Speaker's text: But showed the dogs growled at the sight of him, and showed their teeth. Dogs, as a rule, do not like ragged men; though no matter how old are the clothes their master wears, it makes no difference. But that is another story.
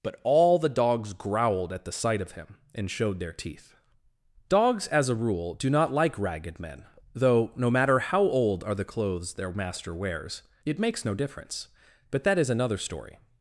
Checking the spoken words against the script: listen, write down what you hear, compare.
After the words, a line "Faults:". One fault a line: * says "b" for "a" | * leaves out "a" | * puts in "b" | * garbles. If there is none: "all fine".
But all the dogs growled at the sight of him, and showed their teeth. Dogs, as a rule, do not like ragged men; though no matter how old are the clothes their master wears, it makes no difference. But that is another story.
Faults:
* says "all" for "showed"